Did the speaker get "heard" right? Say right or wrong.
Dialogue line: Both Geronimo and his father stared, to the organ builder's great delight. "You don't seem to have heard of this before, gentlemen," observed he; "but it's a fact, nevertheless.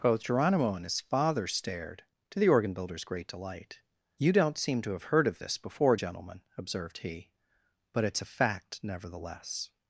right